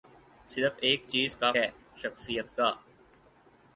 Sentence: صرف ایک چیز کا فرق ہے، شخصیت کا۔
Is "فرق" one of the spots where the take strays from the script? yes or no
yes